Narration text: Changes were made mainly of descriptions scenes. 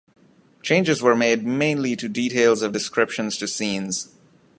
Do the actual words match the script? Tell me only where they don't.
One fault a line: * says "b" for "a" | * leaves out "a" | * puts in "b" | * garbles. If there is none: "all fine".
* puts in "to details"
* puts in "to"